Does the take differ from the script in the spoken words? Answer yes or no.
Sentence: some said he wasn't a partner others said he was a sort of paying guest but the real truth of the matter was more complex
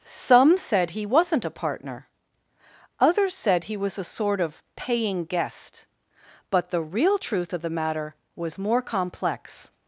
no